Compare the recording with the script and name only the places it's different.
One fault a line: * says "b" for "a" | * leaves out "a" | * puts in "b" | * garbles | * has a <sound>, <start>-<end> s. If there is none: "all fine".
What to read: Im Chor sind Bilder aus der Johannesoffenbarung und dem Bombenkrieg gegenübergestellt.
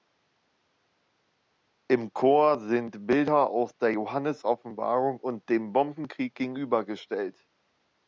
all fine